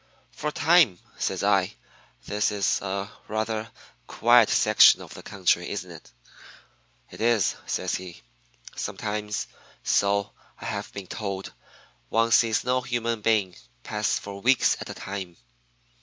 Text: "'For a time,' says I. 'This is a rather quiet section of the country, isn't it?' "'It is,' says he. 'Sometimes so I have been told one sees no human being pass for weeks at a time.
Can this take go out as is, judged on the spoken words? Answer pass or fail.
pass